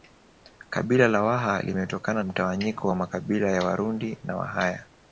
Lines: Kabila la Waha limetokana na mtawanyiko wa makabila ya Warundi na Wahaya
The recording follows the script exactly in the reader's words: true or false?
false